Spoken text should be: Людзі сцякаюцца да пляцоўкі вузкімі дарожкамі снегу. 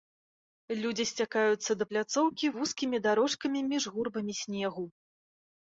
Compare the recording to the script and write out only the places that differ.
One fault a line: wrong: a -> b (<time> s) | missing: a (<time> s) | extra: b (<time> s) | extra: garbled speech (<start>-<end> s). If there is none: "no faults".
extra: між гурбамі (3.7 s)